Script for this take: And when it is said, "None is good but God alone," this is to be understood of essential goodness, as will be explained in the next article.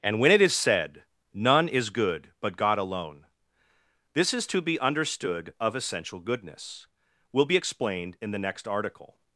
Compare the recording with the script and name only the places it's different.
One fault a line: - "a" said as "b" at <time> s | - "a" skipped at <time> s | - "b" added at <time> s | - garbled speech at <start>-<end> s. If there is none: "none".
- "as" skipped at 6.9 s